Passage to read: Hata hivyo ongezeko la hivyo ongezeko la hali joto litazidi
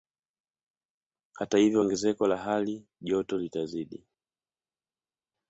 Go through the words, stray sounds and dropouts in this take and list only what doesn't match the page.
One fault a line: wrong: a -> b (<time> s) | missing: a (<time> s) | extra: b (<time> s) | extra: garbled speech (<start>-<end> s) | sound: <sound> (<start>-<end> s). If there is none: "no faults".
missing: hivyo ongezeko la (2.4 s)